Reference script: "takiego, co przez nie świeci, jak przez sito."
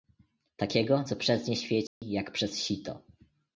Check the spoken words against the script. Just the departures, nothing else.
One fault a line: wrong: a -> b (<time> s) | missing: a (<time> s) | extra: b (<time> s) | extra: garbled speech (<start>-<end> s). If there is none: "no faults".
no faults